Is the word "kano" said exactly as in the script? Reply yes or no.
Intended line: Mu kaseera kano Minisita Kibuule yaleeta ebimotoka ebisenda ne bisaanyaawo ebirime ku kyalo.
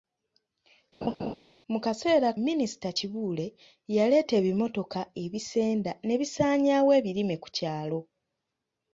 no